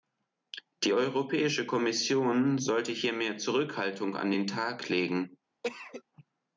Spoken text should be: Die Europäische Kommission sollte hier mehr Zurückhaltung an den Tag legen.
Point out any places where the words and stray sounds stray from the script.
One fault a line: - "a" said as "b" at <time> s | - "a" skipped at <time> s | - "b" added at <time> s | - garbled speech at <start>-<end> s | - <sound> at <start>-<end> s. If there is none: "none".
- cough at 5.6-6.0 s